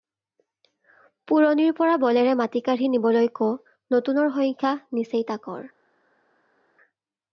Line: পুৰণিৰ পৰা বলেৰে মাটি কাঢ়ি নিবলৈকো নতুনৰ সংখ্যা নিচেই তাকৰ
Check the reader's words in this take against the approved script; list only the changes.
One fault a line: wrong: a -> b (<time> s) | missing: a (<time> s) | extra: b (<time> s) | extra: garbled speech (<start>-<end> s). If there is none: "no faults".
no faults